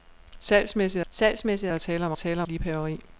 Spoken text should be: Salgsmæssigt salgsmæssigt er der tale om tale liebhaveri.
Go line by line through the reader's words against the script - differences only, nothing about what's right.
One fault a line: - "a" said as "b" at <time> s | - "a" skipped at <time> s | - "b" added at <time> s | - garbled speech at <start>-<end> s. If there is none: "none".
none